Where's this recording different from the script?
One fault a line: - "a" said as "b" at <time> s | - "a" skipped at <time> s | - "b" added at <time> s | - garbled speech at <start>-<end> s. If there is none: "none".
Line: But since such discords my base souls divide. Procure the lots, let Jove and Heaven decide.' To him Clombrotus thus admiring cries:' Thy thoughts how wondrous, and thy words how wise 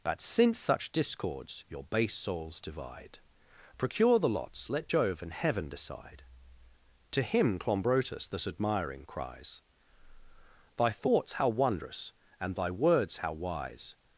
- "my" said as "your" at 1.7 s